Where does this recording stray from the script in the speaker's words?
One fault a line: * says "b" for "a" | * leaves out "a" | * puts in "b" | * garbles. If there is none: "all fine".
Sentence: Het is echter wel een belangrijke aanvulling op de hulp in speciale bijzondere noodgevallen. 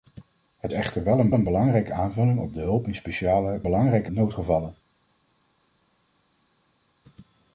* leaves out "is"
* puts in "een"
* says "belangrijke" for "bijzondere"